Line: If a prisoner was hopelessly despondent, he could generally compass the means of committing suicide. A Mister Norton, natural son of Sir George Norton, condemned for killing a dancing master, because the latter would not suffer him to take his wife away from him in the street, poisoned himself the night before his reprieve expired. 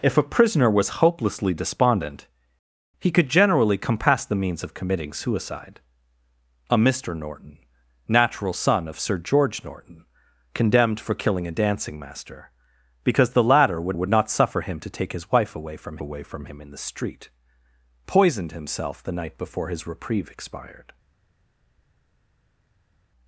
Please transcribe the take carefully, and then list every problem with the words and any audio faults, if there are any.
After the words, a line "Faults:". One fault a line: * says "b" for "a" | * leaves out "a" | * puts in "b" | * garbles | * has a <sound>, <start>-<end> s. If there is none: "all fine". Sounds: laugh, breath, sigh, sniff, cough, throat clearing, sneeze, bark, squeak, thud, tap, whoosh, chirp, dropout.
If a prisoner was hopelessly despondent, he could generally compass the means of committing suicide. A Mister Norton, natural son of Sir George Norton, condemned for killing a dancing master, because the latter would would not suffer him to take his wife away from away from him in the street, poisoned himself the night before his reprieve expired.
Faults:
* puts in "would"
* puts in "away from"